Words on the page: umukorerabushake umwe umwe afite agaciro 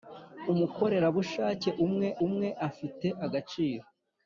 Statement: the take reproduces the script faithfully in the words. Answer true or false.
true